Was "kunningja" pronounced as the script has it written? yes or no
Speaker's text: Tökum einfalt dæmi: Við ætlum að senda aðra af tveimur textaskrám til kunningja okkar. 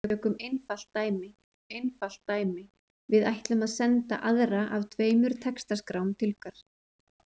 no